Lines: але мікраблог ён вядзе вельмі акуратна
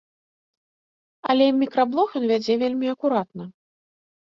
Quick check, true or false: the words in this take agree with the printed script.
true